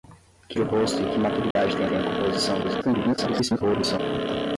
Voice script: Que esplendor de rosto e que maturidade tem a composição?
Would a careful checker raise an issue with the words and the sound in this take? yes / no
yes